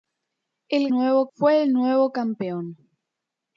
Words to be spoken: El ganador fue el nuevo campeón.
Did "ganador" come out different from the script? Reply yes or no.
yes